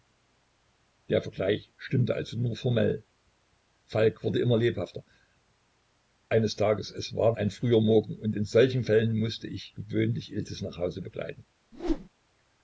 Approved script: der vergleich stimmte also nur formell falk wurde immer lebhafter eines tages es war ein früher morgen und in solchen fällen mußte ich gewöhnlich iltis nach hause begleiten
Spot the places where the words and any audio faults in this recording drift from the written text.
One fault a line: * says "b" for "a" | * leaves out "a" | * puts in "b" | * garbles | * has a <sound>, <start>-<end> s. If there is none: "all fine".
* has a whoosh, 11.7-12.1 s